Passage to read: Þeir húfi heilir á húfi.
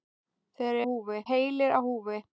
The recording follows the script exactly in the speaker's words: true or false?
true